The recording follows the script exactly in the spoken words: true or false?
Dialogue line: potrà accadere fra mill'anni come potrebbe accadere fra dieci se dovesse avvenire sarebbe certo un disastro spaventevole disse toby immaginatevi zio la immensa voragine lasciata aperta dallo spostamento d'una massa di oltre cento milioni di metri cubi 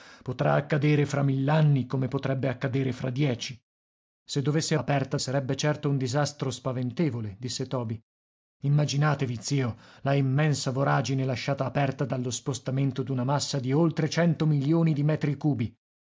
false